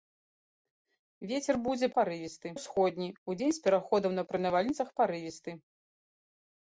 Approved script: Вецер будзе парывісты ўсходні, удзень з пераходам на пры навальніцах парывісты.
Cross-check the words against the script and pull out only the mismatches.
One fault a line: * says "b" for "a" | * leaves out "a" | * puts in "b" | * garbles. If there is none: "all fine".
all fine